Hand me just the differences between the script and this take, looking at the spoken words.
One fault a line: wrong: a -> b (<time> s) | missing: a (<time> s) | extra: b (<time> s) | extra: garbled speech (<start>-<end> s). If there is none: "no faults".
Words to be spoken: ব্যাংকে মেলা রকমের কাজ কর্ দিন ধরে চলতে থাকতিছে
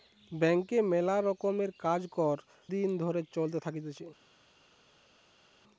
no faults